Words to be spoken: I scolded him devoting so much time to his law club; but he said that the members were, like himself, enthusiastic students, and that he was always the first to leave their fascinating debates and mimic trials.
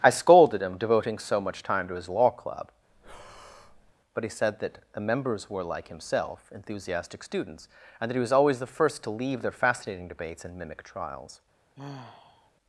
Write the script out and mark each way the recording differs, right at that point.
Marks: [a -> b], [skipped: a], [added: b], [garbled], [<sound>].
I scolded him devoting so much time to his law club; [breath] but he said that the members were, like himself, enthusiastic students, and that he was always the first to leave their fascinating debates and mimic trials. [sigh]